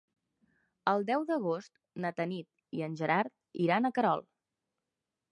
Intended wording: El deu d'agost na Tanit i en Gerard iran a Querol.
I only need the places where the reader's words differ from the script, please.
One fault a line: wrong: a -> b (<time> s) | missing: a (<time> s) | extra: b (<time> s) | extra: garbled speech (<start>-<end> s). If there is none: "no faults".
no faults